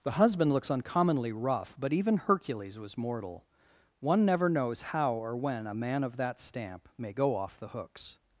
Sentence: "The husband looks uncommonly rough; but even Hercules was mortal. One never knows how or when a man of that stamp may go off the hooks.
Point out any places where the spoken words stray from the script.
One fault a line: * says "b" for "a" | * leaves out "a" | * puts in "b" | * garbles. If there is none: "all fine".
all fine